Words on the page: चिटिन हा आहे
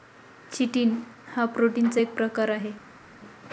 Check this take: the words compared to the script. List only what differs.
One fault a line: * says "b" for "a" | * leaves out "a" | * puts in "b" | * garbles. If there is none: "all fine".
* puts in "प्रोटीनचा एक प्रकार"